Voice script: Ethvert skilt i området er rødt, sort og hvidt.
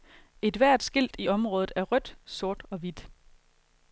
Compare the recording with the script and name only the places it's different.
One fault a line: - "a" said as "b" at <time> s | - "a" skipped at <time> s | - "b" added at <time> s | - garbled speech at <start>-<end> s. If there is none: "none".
none